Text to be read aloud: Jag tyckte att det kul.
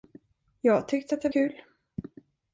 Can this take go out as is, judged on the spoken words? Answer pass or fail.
pass